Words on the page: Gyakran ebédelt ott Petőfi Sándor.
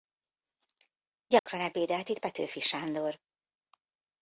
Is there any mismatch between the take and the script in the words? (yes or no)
yes